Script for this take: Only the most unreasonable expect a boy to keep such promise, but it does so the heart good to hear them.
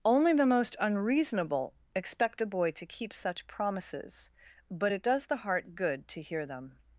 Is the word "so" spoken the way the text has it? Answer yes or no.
no